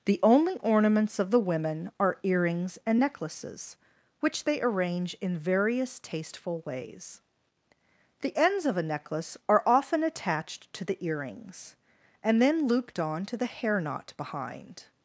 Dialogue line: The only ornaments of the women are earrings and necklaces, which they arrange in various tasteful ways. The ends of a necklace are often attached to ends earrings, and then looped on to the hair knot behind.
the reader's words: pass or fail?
fail